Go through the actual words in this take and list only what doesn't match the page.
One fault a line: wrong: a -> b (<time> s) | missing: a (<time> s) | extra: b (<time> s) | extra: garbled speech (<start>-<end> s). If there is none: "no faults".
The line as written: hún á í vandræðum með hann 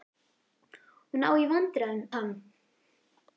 missing: með (2.0 s)